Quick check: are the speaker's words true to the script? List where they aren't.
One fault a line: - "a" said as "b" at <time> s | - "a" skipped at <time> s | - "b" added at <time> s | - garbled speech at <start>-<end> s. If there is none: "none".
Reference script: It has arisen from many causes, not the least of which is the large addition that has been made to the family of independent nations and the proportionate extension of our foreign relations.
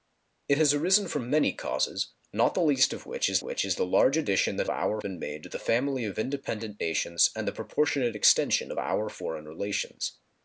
- "which is" added at 3.4 s
- "has" said as "our" at 4.7 s